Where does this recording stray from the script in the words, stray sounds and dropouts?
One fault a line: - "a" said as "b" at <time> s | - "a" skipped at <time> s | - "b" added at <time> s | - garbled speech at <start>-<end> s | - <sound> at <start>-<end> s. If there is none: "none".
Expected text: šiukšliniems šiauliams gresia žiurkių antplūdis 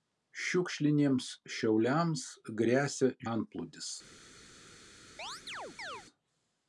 - "žiurkių" skipped at 3.1 s
- chirp at 5.2-6.0 s